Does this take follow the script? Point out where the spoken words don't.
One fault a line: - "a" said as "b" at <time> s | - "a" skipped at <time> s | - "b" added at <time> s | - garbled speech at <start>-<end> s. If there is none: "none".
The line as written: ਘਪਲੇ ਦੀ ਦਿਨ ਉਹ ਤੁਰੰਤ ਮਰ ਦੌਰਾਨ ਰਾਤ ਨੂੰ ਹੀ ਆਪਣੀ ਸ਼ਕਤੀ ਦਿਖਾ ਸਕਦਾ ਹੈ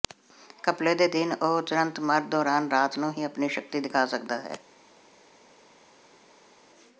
- "ਦੀ" said as "ਦੇ" at 0.9 s